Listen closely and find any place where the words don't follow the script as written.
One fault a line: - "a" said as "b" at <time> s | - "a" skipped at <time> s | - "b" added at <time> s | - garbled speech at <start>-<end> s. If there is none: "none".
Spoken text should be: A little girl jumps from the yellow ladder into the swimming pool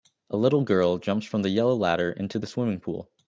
none